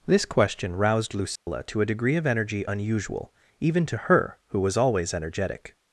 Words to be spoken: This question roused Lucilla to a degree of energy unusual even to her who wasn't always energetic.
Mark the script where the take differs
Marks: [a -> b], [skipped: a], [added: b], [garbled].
This question roused Lucilla to a degree of energy unusual even to her who [wasn't -> was] always energetic.